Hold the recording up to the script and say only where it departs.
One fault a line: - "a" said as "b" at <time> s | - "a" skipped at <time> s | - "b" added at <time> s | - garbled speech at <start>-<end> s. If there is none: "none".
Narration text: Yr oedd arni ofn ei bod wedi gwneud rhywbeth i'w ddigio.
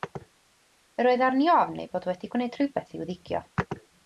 none